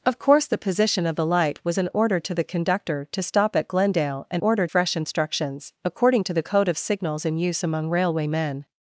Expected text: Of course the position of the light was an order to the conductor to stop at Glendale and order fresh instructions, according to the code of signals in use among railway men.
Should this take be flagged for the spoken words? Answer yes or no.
no